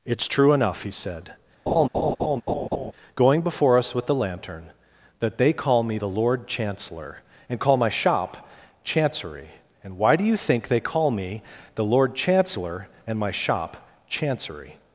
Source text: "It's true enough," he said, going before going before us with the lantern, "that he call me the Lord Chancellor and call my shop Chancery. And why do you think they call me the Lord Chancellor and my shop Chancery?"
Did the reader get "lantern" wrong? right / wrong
right